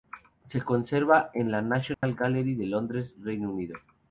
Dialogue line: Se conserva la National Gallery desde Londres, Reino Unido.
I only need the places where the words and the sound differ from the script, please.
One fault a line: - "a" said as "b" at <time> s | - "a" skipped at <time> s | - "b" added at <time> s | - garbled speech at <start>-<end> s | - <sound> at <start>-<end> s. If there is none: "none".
- "en" added at 1.4 s
- dropout at 1.9-2.0 s
- "desde" said as "de" at 2.6 s